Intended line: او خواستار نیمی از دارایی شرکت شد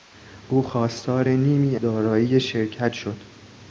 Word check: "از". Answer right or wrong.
wrong